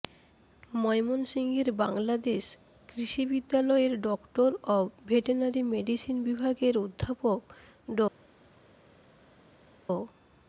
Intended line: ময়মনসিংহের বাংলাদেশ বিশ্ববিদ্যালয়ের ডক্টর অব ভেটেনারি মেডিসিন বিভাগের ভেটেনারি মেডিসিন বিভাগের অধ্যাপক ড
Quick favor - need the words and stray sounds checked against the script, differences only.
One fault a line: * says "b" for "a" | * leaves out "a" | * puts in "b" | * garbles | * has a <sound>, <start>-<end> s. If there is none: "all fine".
* puts in "কৃষি"
* leaves out "ভেটেনারি মেডিসিন বিভাগের"